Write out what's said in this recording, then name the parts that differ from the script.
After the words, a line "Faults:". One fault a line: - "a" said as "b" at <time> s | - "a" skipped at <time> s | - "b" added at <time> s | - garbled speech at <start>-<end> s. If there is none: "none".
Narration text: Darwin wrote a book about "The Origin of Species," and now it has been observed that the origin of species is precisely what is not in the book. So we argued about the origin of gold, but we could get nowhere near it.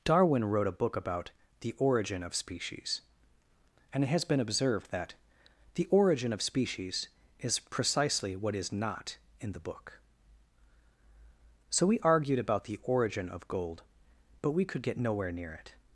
Darwin wrote a book about "The Origin of Species," and it has been observed that the origin of species is precisely what is not in the book. So we argued about the origin of gold, but we could get nowhere near it.
Faults:
- "now" skipped at 4.0 s